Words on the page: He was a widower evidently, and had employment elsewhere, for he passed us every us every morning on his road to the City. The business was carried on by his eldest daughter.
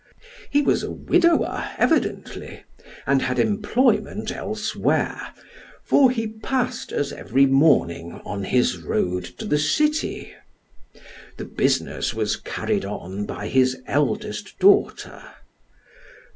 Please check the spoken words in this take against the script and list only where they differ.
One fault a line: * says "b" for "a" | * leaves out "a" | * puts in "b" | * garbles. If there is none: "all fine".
* leaves out "us every"